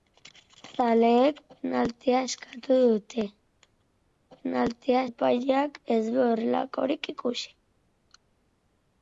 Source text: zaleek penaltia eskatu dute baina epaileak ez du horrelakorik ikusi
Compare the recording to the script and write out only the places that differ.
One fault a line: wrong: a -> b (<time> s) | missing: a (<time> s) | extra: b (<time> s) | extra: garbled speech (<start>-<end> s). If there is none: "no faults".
wrong: baina -> penaltia (4.3 s)